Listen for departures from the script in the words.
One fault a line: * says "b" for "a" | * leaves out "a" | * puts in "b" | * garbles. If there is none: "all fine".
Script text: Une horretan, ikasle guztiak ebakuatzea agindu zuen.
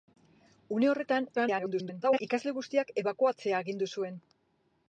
* garbles